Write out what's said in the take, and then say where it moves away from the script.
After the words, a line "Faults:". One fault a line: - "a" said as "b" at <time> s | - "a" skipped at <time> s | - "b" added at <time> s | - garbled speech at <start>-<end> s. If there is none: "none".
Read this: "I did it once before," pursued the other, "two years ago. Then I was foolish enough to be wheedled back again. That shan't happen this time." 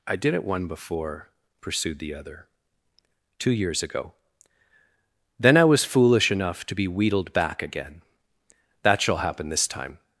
"I did it one before," pursued the other, "two years ago. Then I was foolish enough to be wheedled back again. That shall happen this time."
Faults:
- "once" said as "one" at 0.4 s
- "shan't" said as "shall" at 9.0 s